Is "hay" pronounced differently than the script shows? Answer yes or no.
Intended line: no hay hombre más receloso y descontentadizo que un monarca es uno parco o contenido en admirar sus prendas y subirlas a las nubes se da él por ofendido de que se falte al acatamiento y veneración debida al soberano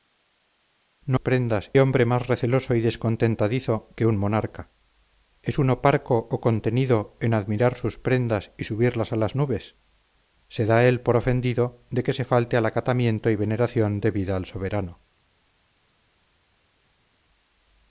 yes